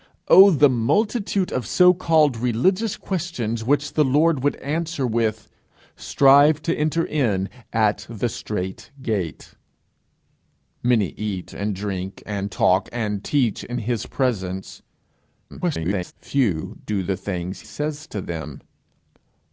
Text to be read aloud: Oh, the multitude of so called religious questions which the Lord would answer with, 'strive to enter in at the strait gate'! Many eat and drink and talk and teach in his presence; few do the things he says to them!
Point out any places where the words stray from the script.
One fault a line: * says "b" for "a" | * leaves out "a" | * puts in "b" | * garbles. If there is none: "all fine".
* garbles
* leaves out "he"